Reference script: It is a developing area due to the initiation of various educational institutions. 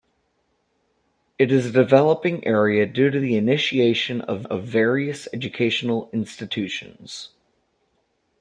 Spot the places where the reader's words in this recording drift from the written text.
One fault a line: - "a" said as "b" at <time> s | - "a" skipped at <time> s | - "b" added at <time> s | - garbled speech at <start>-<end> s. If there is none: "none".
- "of" added at 4.4 s